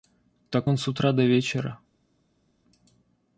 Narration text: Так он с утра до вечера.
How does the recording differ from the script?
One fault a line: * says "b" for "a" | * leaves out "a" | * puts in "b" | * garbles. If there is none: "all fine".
all fine